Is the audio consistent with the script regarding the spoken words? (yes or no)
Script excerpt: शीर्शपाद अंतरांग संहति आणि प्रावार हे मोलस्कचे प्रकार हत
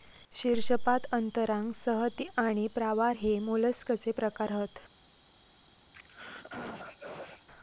yes